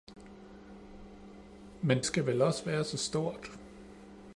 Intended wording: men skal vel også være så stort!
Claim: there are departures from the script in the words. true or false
false